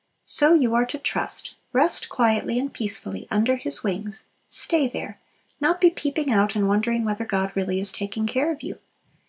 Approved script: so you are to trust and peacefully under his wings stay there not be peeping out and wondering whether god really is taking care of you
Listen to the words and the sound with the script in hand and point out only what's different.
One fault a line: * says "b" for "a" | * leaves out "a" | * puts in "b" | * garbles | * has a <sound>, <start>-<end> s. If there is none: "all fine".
* puts in "rest quietly"